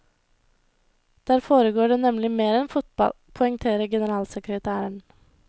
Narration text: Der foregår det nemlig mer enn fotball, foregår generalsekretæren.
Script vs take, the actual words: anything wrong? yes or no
yes